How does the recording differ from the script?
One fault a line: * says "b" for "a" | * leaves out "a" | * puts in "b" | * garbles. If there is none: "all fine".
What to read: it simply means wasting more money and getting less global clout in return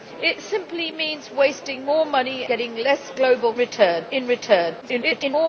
* leaves out "and"
* says "return" for "clout"
* garbles